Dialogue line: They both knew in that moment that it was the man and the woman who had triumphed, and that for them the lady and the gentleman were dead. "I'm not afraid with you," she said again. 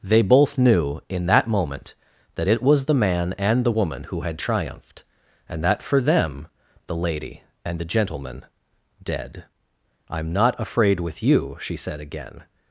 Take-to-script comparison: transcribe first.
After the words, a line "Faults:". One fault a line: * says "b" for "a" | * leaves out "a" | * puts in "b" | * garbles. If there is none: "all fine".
They both knew in that moment that it was the man and the woman who had triumphed, and that for them the lady and the gentleman dead. "I'm not afraid with you," she said again.
Faults:
* leaves out "were"